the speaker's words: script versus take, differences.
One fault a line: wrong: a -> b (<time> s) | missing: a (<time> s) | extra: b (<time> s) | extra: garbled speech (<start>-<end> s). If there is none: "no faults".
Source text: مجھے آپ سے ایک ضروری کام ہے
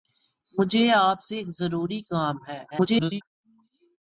extra: garbled speech (2.7-3.2 s)